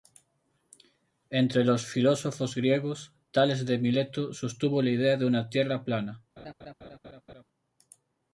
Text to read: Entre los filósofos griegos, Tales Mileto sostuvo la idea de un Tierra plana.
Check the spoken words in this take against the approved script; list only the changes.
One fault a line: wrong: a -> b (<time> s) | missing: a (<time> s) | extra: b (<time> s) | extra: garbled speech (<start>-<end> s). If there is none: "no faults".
extra: de (3.7 s)
wrong: un -> una (5.3 s)